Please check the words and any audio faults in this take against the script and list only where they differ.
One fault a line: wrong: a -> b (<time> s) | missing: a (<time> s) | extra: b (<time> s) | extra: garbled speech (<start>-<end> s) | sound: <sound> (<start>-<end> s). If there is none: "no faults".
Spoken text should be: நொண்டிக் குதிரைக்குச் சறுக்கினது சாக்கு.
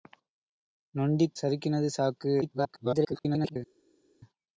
missing: குதிரைக்குச் (1.4 s)
extra: garbled speech (2.4-3.6 s)